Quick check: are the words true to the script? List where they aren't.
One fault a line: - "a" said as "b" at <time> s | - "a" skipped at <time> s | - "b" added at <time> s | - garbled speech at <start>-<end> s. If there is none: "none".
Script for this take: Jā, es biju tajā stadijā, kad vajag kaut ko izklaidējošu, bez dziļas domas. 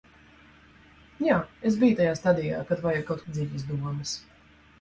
- "ko izklaidējošu bez" skipped at 3.2 s